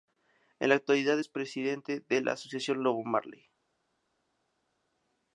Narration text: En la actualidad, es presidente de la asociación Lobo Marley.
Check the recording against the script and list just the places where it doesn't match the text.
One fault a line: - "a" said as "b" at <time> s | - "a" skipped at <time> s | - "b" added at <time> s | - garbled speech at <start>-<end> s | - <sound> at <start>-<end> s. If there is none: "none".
none